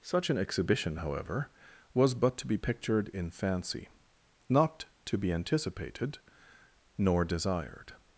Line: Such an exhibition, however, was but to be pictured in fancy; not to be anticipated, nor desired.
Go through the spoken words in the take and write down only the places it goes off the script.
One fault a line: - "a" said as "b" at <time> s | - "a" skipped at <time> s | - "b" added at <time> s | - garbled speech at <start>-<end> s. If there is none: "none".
none